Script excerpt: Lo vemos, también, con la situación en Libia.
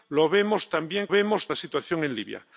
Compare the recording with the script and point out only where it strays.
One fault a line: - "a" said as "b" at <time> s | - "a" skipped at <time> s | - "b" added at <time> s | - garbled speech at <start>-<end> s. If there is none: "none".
- "con" said as "vemos" at 1.1 s